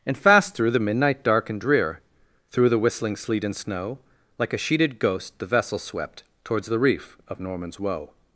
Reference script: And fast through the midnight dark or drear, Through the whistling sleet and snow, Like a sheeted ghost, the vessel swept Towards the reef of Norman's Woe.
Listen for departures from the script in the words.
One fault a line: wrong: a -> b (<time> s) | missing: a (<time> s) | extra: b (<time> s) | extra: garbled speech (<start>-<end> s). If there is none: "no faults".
wrong: or -> and (1.5 s)